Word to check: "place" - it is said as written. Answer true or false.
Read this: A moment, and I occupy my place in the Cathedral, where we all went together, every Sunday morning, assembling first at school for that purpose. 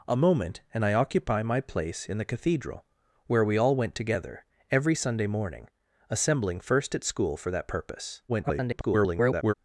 true